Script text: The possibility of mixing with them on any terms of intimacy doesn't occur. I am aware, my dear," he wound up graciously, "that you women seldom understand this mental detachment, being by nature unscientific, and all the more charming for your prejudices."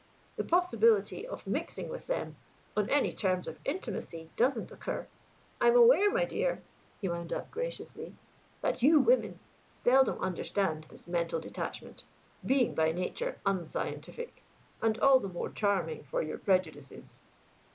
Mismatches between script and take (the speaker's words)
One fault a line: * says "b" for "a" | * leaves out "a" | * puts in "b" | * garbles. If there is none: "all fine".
all fine